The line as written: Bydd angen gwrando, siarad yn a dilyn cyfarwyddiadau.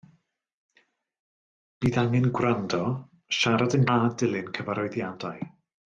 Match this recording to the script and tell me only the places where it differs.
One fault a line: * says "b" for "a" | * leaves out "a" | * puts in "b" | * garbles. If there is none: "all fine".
all fine